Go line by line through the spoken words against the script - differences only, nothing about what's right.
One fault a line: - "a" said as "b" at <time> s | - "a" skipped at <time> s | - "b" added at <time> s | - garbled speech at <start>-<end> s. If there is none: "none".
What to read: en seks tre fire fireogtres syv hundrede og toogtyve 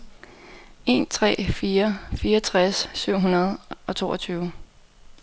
- "seks" skipped at 1.1 s